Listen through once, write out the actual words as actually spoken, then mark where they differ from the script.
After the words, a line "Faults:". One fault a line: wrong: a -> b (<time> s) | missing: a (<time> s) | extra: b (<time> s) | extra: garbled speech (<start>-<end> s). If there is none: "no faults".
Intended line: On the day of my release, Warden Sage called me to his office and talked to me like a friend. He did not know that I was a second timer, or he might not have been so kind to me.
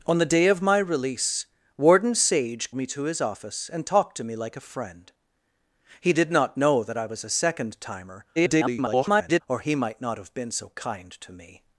On the day of my release, Warden Sage me to his office and talked to me like a friend. He did not know that I was a second timer, [garbled] or he might not have been so kind to me.
Faults:
missing: called (2.7 s)
extra: garbled speech (8.4-9.4 s)